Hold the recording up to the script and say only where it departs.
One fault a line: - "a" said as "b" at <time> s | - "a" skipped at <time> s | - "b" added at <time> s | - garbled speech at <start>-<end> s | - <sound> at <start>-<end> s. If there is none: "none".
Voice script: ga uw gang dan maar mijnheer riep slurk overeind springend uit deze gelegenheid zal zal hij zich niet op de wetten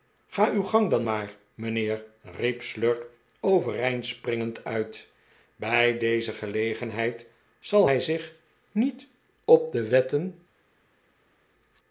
- "bij" added at 5.5 s
- "zal" skipped at 7.9 s